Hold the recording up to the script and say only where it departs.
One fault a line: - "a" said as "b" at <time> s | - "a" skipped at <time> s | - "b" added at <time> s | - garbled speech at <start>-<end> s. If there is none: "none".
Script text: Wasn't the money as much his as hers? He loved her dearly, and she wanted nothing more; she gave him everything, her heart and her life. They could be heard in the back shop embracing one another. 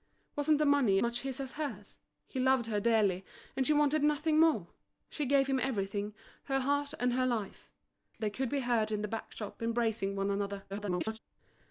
- "as" skipped at 1.0 s
- garbled speech at 10.7-11.2 s